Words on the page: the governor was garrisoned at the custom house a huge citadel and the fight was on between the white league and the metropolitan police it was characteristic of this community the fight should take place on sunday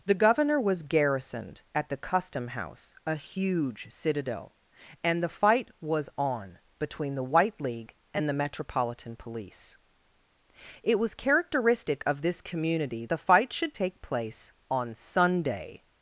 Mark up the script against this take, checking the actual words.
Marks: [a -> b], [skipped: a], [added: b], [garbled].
the governor was garrisoned at the custom house a huge citadel and the fight was on between the white league and the metropolitan police it was characteristic of this community the fight should take place on sunday